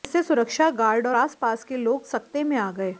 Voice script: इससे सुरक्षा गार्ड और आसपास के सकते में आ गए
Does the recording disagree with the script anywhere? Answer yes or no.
yes